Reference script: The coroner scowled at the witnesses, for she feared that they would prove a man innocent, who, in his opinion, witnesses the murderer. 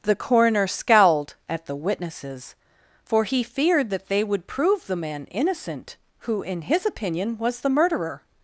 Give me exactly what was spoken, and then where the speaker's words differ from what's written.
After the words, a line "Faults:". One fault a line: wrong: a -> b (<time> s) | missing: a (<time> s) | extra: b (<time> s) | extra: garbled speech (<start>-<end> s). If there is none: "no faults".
The coroner scowled at the witnesses, for he feared that they would prove the man innocent, who, in his opinion, was the murderer.
Faults:
wrong: she -> he (3.3 s)
wrong: a -> the (4.9 s)
wrong: witnesses -> was (7.4 s)